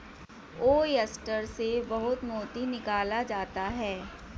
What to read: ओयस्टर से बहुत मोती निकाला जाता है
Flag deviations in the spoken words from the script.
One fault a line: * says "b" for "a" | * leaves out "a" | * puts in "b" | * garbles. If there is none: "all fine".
all fine